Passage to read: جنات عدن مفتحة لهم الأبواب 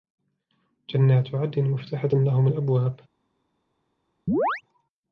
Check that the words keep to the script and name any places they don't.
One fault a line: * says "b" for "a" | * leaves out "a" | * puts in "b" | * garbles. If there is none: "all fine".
all fine